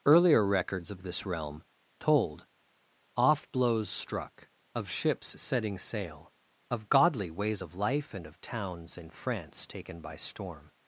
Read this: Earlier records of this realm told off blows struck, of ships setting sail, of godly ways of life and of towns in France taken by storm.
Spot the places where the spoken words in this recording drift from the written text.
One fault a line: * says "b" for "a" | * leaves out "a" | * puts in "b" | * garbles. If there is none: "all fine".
all fine